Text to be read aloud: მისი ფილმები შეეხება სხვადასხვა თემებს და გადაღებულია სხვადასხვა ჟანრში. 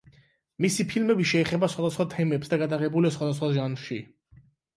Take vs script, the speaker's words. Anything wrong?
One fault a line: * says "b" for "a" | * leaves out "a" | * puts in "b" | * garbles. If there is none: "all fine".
all fine